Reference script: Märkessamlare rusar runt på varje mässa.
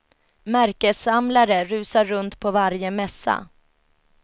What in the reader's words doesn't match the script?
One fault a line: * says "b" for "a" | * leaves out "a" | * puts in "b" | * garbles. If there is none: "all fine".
all fine